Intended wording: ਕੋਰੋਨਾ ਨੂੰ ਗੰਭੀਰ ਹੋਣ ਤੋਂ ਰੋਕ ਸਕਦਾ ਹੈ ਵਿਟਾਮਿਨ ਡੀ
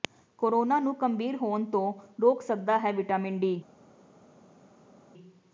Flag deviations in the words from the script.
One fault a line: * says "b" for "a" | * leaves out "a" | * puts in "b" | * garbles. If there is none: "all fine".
all fine